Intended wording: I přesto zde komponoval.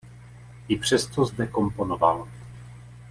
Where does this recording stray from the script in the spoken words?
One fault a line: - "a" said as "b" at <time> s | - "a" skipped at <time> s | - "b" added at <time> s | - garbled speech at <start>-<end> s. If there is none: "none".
none